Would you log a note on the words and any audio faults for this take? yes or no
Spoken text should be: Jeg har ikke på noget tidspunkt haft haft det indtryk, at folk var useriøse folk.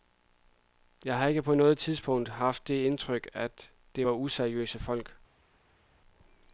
yes